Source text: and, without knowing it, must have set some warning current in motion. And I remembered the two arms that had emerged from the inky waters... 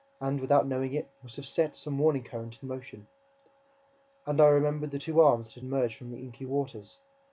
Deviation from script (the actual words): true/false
false